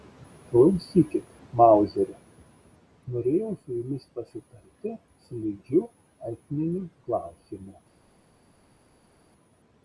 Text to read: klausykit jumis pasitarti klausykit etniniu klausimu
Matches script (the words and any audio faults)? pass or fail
fail